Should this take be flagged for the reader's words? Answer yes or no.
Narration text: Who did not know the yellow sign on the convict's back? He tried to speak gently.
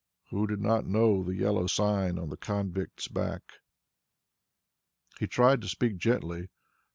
no